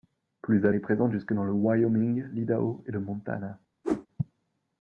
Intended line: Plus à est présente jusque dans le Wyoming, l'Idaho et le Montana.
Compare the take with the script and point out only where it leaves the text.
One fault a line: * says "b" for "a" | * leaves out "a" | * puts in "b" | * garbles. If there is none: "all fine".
all fine